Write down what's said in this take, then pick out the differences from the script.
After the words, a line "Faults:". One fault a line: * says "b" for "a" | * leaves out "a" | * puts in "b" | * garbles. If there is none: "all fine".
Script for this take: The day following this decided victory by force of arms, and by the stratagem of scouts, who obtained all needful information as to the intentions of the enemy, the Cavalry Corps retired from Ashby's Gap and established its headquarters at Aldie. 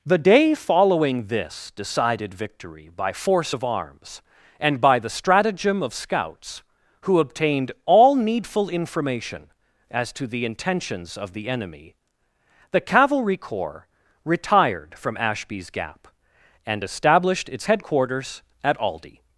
The day following this decided victory by force of arms, and by the stratagem of scouts, who obtained all needful information as to the intentions of the enemy, the Cavalry Corps retired from Ashby's Gap and established its headquarters at Aldie.
Faults:
all fine